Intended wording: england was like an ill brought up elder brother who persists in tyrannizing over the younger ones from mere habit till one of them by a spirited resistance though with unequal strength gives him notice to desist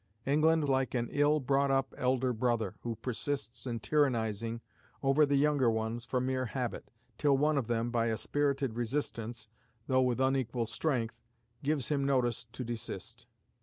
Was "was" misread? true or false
true